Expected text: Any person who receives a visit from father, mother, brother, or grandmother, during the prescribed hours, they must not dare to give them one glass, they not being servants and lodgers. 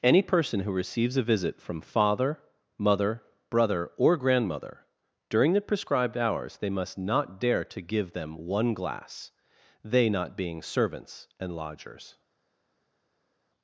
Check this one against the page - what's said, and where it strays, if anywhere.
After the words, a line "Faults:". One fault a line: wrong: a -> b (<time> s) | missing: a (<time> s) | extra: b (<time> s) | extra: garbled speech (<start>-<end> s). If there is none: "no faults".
Any person who receives a visit from father, mother, brother, or grandmother, during the prescribed hours, they must not dare to give them one glass, they not being servants and lodgers.
Faults:
no faults